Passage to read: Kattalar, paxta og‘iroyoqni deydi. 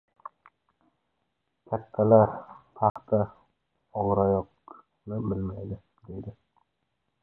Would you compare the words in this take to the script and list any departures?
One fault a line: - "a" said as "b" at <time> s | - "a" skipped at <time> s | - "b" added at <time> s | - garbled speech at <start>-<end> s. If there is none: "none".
- "bilmaydi" added at 5.3 s